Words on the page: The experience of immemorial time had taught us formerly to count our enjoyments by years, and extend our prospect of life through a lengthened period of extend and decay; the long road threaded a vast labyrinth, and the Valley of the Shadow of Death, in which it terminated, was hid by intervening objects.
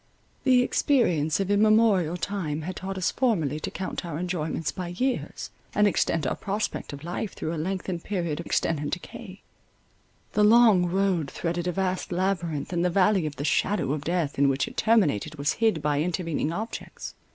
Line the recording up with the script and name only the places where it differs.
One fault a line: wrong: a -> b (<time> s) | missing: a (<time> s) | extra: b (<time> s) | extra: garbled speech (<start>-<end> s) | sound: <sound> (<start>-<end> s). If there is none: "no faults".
no faults